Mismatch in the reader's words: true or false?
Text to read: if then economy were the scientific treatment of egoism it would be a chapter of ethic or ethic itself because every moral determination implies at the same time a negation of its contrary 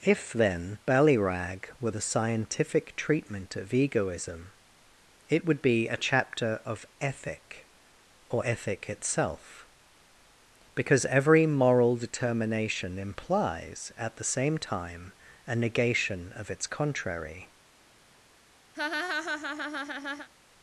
true